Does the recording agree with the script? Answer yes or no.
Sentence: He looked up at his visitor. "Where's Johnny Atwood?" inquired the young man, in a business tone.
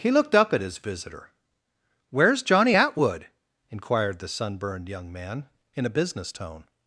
no